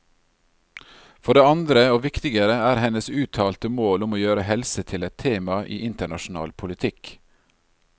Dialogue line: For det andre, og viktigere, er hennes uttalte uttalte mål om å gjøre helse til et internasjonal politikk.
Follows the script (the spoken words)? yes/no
no